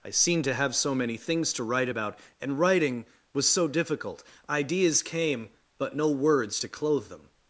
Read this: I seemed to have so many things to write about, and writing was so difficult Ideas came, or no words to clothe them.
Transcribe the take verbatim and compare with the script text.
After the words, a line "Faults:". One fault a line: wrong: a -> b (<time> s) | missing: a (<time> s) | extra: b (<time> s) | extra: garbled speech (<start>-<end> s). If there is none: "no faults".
I seemed to have so many things to write about, and writing was so difficult Ideas came, but no words to clothe them.
Faults:
wrong: or -> but (5.8 s)